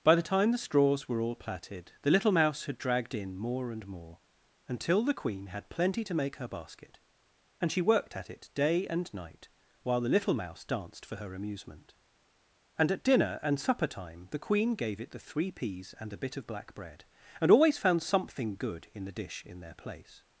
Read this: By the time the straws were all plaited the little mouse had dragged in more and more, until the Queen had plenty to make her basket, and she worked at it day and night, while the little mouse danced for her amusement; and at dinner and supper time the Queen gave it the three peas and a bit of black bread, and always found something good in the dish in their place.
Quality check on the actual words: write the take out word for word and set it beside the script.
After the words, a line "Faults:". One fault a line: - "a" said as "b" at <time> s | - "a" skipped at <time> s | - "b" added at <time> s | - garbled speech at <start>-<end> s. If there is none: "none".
By the time the straws were all plaited the little mouse had dragged in more and more, until the Queen had plenty to make her basket, and she worked at it day and night, while the little mouse danced for her amusement; and at dinner and supper time the Queen gave it the three peas and a bit of black bread, and always found something good in the dish in their place.
Faults:
none